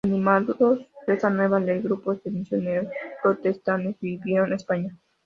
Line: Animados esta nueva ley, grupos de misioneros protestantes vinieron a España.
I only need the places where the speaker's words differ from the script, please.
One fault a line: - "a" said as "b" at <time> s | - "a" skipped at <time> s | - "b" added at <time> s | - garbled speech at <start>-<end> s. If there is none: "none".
none